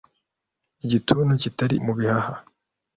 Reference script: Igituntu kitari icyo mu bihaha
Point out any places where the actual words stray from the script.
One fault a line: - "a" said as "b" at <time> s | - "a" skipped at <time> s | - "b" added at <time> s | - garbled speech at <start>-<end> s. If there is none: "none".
- "icyo" skipped at 1.8 s